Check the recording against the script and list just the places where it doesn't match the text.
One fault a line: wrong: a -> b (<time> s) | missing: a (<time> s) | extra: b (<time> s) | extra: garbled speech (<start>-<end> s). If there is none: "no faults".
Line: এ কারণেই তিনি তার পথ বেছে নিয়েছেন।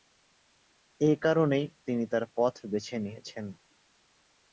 no faults